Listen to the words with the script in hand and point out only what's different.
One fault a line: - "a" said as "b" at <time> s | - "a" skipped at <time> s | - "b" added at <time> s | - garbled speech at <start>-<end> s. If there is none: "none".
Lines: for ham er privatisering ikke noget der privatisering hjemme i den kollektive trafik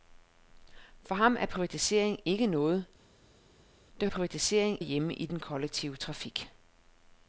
none